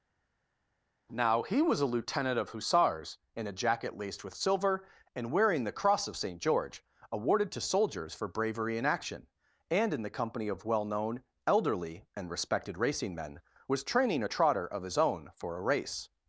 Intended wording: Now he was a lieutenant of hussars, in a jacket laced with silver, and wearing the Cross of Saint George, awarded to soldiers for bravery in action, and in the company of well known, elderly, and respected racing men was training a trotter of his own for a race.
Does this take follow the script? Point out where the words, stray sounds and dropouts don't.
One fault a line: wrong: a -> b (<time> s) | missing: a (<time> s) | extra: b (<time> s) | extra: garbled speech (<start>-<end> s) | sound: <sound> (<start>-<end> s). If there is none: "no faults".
no faults